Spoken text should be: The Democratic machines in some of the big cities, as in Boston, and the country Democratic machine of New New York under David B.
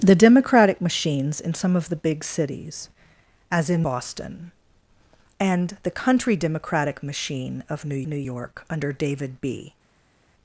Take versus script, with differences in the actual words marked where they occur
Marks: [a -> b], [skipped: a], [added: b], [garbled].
The Democratic machines in some of the big cities, as in Boston, and the country Democratic machine of New New York under David B.